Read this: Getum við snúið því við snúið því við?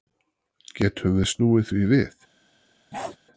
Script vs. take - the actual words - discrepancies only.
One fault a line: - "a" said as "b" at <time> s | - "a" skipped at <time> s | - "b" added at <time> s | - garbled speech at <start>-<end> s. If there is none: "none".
- "snúið því við" skipped at 2.2 s